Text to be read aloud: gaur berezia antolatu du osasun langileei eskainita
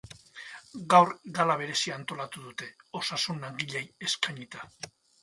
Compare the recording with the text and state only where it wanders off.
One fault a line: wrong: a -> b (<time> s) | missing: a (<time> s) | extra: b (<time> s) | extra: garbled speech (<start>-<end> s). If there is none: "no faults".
extra: gala (1.4 s)
wrong: du -> dute (2.5 s)